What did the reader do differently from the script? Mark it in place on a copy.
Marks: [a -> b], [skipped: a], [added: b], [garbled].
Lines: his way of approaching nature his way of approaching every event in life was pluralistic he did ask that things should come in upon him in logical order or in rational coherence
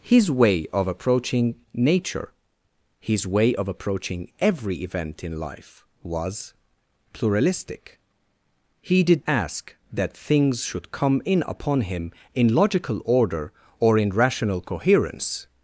his way of approaching nature his way of approaching every event in life was pluralistic he did ask that things should come in upon him in logical order or in rational coherence